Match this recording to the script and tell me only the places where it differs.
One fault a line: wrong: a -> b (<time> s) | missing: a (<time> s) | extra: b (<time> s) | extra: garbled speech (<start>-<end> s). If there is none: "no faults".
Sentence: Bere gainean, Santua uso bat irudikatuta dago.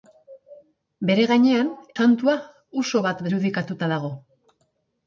no faults